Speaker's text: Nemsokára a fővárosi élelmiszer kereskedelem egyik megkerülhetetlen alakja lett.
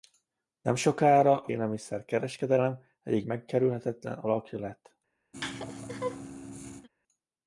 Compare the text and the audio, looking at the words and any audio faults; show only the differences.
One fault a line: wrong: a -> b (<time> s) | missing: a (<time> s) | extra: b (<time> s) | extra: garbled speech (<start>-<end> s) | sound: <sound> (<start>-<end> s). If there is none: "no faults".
missing: fővárosi (1.5 s)
sound: laugh (5.3-6.9 s)